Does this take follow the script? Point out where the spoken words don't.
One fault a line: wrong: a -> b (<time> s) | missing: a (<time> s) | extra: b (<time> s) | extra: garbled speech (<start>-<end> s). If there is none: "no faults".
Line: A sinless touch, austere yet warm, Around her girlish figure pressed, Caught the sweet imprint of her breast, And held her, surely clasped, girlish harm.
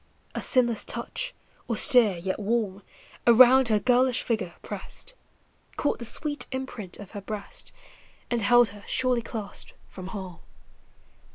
wrong: girlish -> from (9.9 s)